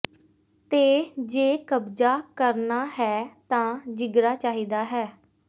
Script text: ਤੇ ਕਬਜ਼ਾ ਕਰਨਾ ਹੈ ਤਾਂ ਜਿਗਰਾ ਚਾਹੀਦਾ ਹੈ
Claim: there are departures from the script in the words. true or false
true